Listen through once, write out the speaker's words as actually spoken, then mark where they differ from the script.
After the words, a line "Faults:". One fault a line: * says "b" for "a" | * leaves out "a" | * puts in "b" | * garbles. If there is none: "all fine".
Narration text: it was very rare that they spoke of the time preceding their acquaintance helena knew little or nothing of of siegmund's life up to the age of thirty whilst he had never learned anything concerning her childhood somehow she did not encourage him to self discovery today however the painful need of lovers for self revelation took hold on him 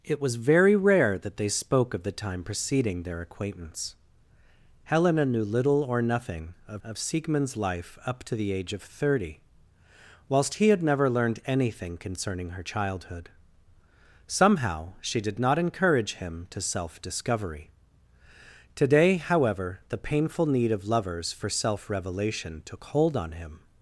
it was very rare that they spoke of the time preceding their acquaintance helena knew little or nothing of of siegmund's life up to the age of thirty whilst he had never learned anything concerning her childhood somehow she did not encourage him to self discovery today however the painful need of lovers for self revelation took hold on him
Faults:
all fine